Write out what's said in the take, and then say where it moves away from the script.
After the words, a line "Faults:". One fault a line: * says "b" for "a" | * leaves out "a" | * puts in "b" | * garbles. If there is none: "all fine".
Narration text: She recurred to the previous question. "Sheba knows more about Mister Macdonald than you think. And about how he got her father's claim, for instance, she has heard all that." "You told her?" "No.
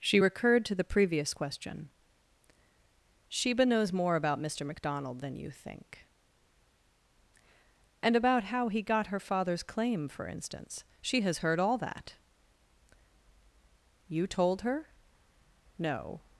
She recurred to the previous question. "Sheba knows more about Mister Macdonald than you think. And about how he got her father's claim, for instance, she has heard all that." "You told her?" "No.
Faults:
all fine